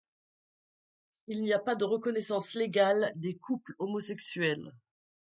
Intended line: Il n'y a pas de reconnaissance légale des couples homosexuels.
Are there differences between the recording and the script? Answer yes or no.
no